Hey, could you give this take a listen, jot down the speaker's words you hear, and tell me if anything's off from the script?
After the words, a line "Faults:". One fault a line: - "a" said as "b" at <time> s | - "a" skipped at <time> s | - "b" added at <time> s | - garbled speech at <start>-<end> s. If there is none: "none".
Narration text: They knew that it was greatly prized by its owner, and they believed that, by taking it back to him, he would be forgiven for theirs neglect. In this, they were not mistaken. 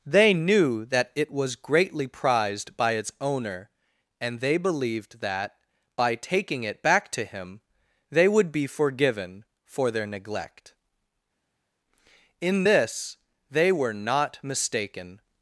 They knew that it was greatly prized by its owner, and they believed that, by taking it back to him, they would be forgiven for their neglect. In this, they were not mistaken.
Faults:
- "he" said as "they" at 8.1 s
- "theirs" said as "their" at 9.9 s